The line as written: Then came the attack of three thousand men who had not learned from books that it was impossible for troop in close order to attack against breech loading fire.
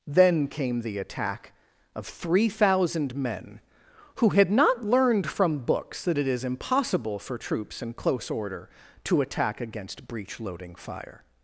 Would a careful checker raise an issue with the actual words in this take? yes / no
yes